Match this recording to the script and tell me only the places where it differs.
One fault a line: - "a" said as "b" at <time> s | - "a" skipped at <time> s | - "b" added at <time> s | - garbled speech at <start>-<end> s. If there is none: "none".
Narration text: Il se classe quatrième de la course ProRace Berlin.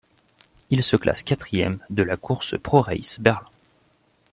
none